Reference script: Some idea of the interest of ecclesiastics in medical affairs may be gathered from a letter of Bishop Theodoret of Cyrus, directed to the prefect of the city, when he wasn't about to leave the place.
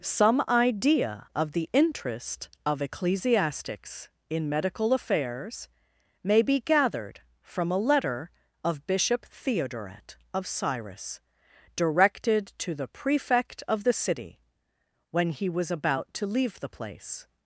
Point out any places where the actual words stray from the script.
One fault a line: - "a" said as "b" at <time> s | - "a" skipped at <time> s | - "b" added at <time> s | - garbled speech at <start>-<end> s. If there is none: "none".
- "wasn't" said as "was" at 15.5 s